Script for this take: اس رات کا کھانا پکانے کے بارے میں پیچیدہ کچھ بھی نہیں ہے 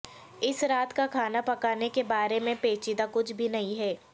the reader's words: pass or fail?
pass